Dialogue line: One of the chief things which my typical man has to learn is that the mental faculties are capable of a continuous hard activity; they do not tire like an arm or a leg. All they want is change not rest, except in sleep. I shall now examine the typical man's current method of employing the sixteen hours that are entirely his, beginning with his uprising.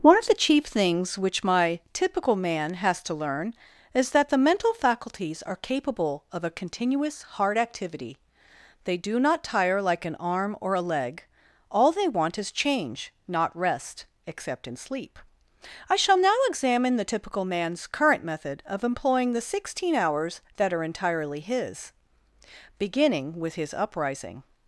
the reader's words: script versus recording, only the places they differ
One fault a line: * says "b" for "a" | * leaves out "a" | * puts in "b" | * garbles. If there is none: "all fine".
all fine